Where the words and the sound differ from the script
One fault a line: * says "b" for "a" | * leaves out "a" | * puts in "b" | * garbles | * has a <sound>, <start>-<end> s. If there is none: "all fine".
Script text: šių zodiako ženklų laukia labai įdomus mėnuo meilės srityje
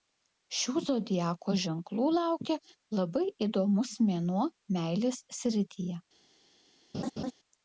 * has a laugh, 6.9-7.3 s